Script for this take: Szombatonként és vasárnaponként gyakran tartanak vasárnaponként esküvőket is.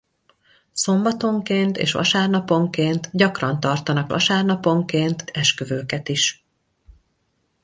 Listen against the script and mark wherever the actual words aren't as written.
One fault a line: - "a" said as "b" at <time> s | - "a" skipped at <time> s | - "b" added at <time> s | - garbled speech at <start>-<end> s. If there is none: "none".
none